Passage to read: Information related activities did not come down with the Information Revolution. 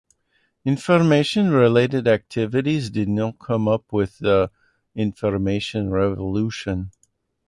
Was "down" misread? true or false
true